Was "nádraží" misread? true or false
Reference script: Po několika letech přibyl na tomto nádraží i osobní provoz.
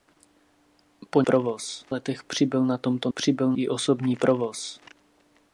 true